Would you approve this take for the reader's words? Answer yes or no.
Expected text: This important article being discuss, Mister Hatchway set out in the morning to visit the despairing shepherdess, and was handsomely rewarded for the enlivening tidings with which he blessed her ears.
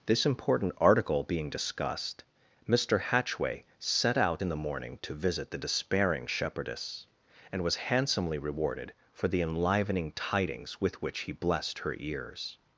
no